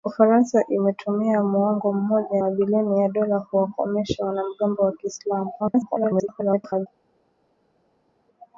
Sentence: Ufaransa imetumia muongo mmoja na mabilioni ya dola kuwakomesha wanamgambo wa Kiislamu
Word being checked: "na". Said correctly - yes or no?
no